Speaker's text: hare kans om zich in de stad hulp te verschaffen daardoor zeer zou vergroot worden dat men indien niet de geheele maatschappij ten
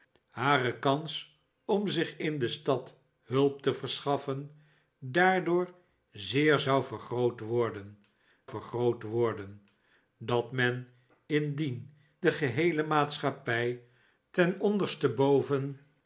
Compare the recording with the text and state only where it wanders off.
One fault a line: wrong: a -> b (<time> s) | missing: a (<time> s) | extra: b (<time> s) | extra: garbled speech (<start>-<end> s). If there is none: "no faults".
extra: vergroot worden (8.5 s)
missing: niet (11.9 s)